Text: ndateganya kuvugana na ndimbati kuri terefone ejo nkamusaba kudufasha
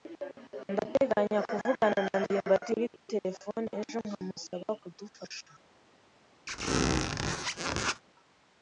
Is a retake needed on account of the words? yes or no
no